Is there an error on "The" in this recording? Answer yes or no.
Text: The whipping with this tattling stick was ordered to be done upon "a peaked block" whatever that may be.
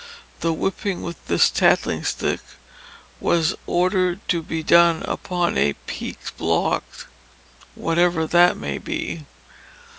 no